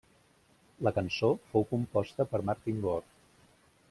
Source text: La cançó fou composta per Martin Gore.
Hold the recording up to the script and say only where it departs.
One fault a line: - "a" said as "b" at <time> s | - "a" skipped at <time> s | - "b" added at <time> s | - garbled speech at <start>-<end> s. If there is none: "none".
none